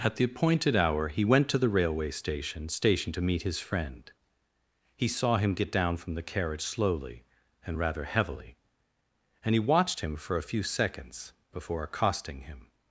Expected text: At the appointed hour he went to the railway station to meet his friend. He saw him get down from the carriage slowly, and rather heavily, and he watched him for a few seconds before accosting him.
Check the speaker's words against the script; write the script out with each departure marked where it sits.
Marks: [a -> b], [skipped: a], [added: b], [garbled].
At the appointed hour he went to the railway station [added: station] to meet his friend. He saw him get down from the carriage slowly, and rather heavily, and he watched him for a few seconds before accosting him.